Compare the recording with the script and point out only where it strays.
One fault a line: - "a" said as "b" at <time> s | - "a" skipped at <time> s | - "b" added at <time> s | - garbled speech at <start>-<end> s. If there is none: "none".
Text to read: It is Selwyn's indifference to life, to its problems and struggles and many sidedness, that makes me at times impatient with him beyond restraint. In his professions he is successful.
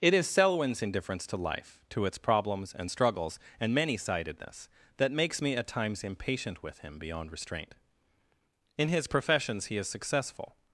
none